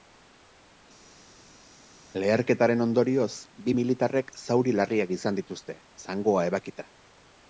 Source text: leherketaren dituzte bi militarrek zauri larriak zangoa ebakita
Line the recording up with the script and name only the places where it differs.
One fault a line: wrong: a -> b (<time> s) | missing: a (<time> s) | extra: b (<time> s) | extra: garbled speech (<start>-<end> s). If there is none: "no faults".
wrong: dituzte -> ondorioz (2.8 s)
extra: izan dituzte (5.2 s)